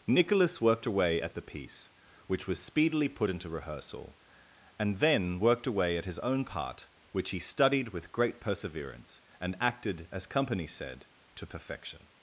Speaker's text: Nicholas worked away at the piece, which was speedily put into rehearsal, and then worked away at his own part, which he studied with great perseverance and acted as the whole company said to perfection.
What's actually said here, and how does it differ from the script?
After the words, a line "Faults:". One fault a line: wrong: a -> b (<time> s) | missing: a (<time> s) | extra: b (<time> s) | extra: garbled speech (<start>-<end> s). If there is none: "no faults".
Nicholas worked away at the piece, which was speedily put into rehearsal, and then worked away at his own part, which he studied with great perseverance and acted as company said to perfection.
Faults:
missing: the whole (10.2 s)